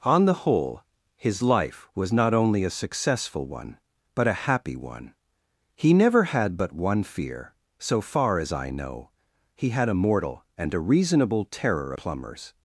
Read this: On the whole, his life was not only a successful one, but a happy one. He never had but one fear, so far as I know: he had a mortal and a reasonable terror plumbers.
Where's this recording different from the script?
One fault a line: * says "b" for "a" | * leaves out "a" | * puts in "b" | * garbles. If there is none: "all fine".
all fine